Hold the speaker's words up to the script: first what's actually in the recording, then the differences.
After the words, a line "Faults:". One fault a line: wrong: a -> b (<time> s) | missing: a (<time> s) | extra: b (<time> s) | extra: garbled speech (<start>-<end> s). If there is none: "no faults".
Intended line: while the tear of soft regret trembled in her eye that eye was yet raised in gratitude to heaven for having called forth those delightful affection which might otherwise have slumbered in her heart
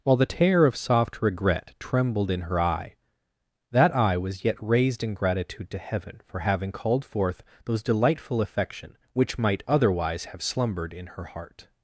while the tear of soft regret trembled in her eye that eye was yet raised in gratitude to heaven for having called forth those delightful affection which might otherwise have slumbered in her heart
Faults:
no faults